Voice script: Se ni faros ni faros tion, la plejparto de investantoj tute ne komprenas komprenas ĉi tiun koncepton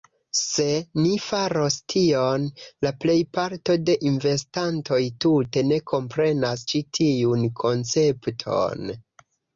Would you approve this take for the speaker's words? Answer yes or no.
no